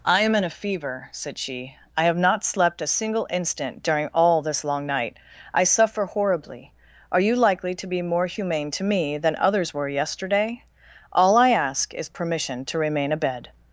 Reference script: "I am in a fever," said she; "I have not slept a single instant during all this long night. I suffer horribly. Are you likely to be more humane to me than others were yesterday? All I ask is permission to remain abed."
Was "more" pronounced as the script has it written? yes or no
yes